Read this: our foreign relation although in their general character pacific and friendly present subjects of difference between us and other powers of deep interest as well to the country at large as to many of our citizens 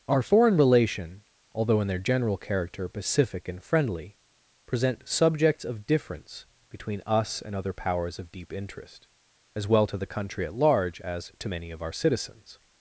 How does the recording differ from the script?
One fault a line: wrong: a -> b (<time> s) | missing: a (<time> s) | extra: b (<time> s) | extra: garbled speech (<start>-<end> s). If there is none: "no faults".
no faults